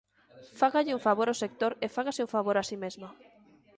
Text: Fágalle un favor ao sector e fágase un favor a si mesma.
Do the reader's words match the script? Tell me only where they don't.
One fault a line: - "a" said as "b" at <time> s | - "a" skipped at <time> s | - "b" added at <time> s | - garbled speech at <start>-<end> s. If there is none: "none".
none